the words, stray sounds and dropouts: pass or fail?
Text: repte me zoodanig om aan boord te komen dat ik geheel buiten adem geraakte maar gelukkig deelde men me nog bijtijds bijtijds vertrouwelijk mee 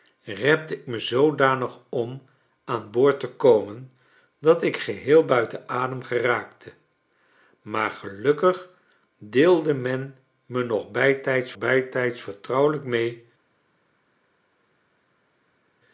pass